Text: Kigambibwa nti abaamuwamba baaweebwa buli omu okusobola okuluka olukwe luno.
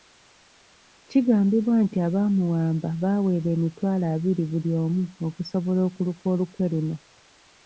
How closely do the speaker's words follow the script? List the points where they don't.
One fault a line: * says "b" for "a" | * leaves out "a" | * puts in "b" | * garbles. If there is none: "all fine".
* puts in "emitwalo abiri"